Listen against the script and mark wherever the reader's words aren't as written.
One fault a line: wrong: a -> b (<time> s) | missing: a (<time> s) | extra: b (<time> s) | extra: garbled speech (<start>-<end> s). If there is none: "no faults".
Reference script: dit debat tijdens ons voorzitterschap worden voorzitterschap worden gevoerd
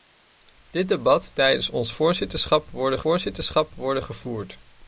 no faults